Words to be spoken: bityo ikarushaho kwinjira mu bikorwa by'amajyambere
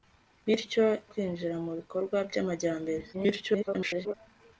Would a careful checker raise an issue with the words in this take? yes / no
yes